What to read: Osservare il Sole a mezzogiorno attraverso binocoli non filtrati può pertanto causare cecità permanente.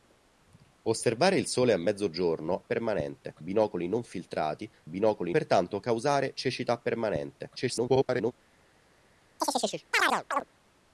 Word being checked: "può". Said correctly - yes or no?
no